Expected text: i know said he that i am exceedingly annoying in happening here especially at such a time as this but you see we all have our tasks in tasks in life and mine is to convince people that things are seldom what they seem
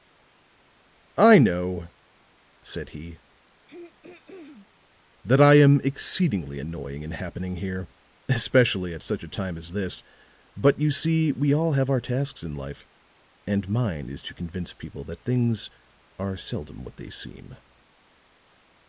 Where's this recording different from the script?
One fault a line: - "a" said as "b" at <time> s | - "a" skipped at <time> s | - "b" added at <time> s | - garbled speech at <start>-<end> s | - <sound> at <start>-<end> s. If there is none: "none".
- throat clearing at 3.7-4.7 s
- "tasks in" skipped at 12.6 s